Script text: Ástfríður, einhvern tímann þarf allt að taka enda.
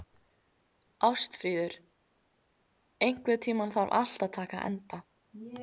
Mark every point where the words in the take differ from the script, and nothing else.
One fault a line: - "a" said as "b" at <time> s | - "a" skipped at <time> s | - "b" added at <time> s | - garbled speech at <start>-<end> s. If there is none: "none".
none